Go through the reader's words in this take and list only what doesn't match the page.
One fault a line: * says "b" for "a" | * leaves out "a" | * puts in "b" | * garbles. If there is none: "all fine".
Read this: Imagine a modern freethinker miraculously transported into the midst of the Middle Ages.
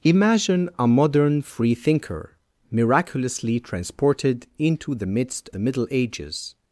* leaves out "of"